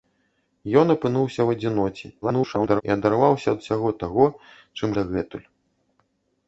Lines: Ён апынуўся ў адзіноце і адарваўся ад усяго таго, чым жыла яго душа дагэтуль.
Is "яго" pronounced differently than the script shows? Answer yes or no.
yes